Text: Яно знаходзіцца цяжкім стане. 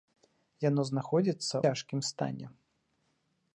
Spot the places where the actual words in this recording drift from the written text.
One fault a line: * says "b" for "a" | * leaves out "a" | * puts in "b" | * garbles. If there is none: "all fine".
all fine